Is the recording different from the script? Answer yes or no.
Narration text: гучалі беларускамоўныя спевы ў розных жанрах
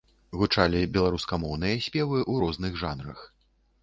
no